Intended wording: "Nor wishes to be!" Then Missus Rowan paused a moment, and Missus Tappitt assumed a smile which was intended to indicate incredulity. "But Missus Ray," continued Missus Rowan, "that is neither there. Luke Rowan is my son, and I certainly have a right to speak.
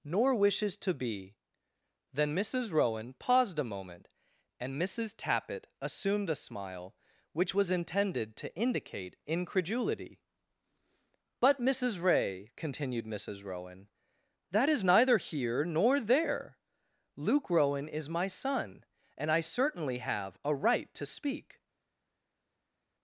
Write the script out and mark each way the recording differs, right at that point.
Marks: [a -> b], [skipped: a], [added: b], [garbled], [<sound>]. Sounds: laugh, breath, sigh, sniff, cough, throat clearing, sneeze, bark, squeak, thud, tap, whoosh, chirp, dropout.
"Nor wishes to be!" Then Missus Rowan paused a moment, and Missus Tappitt assumed a smile which was intended to indicate incredulity. "But Missus Ray," continued Missus Rowan, "that is neither [added: here nor] there. Luke Rowan is my son, and I certainly have a right to speak.